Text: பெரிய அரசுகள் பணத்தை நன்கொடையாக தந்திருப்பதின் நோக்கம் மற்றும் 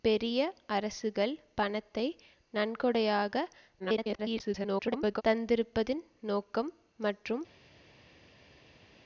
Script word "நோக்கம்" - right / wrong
right